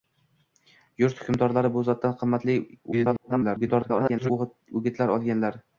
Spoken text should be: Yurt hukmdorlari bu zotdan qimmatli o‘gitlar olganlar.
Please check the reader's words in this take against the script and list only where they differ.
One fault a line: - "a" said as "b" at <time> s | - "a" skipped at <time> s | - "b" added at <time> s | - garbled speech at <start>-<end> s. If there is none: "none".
- garbled speech at 2.9-4.3 s